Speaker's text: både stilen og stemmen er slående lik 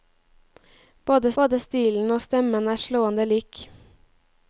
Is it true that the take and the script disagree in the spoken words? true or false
true